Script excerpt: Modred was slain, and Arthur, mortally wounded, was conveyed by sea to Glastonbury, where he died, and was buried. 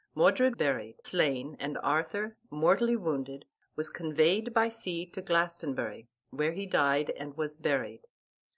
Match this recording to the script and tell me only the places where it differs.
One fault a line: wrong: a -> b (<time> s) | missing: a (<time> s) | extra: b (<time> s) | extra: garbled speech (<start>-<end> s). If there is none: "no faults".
wrong: was -> buried (0.5 s)